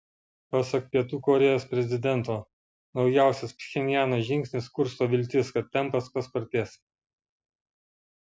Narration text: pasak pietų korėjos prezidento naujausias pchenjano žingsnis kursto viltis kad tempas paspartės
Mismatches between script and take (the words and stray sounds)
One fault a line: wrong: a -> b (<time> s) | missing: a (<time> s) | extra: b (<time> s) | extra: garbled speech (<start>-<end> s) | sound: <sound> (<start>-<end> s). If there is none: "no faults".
no faults